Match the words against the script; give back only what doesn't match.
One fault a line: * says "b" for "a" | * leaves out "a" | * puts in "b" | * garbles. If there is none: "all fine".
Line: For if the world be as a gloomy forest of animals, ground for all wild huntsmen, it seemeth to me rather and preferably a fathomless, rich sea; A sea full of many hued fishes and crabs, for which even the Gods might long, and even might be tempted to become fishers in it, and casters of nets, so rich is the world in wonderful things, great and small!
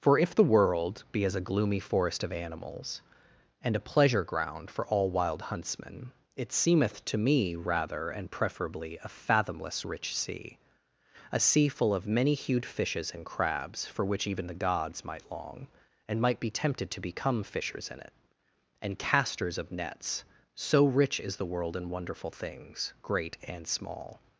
* puts in "and a pleasure"
* leaves out "even"